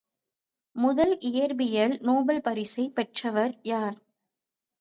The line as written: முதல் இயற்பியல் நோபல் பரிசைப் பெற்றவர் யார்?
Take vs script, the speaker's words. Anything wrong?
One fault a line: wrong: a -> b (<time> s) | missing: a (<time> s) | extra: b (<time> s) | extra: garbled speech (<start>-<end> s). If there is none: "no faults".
no faults